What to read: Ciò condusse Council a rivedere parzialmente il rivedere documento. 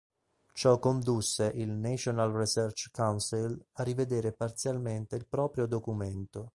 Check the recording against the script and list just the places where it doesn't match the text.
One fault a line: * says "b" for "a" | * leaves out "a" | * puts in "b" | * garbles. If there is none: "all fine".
* puts in "il National Research"
* says "proprio" for "rivedere"